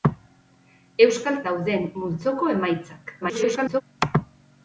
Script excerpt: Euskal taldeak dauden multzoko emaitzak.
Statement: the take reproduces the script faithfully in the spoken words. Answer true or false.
false